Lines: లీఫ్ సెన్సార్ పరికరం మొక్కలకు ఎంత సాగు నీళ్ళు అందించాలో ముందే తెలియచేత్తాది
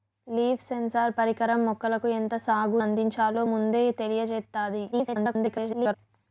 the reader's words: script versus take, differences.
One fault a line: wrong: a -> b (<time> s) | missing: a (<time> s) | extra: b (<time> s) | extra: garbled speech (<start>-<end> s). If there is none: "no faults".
missing: నీళ్ళు (2.8 s)
extra: garbled speech (4.9-5.9 s)